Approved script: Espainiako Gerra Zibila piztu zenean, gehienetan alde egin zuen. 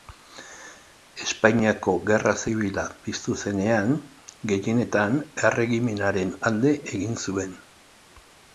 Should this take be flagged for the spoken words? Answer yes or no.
yes